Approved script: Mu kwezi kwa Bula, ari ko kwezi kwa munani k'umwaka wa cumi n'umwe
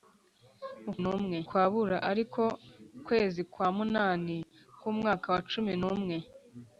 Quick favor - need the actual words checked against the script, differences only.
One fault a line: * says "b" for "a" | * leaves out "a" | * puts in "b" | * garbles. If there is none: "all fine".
* says "n'umwe" for "kwezi"